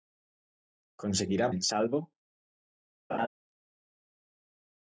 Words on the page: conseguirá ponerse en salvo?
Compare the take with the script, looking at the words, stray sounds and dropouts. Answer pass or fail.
fail